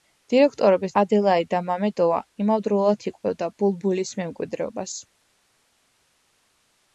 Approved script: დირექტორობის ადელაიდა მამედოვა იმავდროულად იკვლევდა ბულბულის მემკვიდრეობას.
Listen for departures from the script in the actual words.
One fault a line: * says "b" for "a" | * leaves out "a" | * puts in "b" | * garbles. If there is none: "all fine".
all fine